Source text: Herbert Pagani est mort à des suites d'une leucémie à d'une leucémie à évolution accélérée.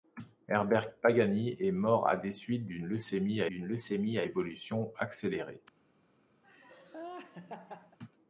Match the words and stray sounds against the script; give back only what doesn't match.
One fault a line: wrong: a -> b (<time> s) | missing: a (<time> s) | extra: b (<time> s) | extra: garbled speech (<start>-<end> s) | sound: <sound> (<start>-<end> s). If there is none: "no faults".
sound: laugh (6.4-8.0 s)